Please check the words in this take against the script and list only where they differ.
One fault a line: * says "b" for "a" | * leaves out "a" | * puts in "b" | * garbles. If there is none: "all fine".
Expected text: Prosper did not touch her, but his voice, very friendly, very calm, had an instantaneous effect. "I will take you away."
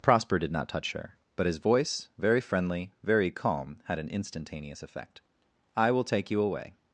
all fine